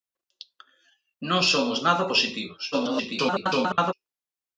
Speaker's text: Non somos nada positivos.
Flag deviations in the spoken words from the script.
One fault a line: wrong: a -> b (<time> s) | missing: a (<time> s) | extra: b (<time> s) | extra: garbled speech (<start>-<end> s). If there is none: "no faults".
extra: garbled speech (2.7-3.9 s)